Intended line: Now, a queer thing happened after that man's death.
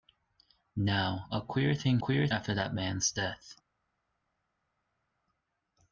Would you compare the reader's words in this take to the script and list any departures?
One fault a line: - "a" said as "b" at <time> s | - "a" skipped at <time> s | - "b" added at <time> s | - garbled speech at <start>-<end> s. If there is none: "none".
- "happened" said as "queer" at 2.0 s